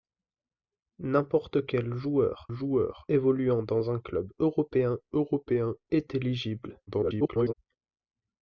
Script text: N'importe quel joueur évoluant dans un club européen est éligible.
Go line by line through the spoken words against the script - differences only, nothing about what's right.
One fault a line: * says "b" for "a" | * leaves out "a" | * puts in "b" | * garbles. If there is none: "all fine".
* puts in "joueur"
* puts in "européen"
* garbles